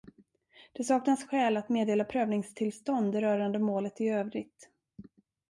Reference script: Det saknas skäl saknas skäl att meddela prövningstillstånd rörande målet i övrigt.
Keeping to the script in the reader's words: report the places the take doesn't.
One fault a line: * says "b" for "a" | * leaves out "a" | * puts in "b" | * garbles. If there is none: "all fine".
* leaves out "saknas skäl"